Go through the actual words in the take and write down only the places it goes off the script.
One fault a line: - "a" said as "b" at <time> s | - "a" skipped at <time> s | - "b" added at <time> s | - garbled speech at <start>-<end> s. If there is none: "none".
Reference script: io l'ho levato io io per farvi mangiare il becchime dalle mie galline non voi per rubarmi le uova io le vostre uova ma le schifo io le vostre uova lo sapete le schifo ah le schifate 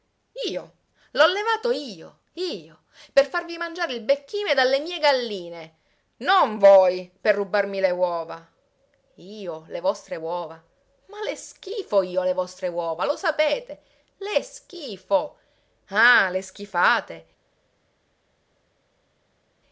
none